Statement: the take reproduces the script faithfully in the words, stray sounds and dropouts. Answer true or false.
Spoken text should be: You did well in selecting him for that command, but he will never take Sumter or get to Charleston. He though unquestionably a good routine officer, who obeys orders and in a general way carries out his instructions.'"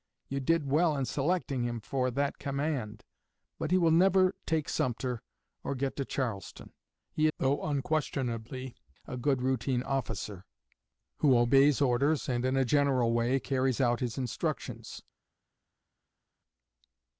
true